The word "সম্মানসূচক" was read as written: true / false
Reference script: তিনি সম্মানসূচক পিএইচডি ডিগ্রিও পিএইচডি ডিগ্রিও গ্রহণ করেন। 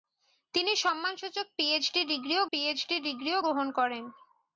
true